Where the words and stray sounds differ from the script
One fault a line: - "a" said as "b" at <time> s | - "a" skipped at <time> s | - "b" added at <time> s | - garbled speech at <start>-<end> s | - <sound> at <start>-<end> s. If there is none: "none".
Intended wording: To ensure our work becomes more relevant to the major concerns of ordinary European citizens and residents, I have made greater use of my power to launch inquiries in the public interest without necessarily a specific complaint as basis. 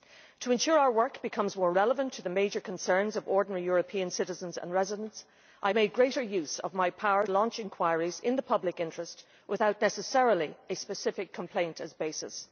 - "have" skipped at 5.7 s
- "to" skipped at 7.3 s